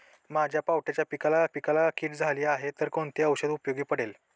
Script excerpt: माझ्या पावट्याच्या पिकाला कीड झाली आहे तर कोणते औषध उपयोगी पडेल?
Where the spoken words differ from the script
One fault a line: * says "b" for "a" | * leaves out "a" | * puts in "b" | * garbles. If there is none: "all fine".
* puts in "पिकाला"